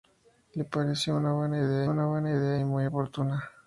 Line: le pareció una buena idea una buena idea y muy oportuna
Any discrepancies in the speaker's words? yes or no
no